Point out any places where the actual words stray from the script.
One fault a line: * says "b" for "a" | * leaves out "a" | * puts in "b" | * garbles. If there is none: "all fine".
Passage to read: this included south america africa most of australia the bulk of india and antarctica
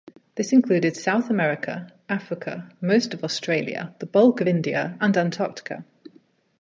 all fine